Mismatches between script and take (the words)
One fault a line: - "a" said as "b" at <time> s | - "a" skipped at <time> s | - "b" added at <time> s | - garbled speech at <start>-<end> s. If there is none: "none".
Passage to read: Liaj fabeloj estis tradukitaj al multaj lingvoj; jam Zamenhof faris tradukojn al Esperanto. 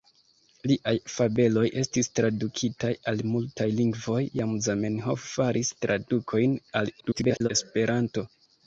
- garbled speech at 7.0-7.5 s